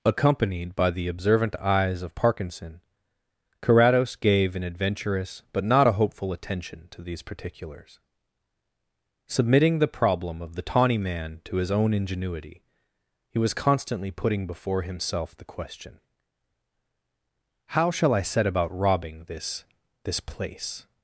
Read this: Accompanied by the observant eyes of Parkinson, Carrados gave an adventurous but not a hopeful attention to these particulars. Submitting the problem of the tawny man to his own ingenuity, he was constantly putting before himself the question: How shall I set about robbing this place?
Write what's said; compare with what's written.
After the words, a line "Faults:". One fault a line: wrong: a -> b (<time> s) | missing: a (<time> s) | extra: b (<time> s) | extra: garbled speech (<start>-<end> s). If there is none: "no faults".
Accompanied by the observant eyes of Parkinson, Carrados gave an adventurous but not a hopeful attention to these particulars. Submitting the problem of the tawny man to his own ingenuity, he was constantly putting before himself the question: How shall I set about robbing this this place?
Faults:
extra: this (20.1 s)